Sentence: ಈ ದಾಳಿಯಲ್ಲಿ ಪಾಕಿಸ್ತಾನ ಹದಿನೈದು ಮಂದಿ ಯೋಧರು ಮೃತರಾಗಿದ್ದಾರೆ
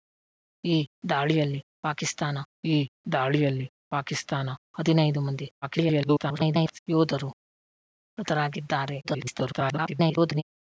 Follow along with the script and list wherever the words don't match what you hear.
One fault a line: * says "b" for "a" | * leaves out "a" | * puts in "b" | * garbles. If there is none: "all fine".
* puts in "ಈ ದಾಳಿಯಲ್ಲಿ ಪಾಕಿಸ್ತಾನ"
* garbles
* garbles